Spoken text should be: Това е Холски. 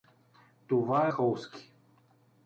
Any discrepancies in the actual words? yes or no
no